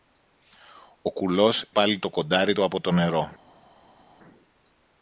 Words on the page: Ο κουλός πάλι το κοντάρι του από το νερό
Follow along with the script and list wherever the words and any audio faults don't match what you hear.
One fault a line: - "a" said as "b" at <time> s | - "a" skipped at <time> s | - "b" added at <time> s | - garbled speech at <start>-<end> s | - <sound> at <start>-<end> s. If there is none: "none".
none